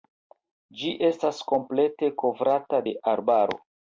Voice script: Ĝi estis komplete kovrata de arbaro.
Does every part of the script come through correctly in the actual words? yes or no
no